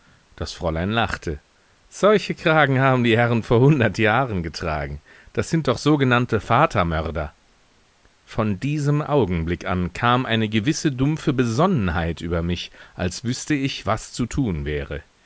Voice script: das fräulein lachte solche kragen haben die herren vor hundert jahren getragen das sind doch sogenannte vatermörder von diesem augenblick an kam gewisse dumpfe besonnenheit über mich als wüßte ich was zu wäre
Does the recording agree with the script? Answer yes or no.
no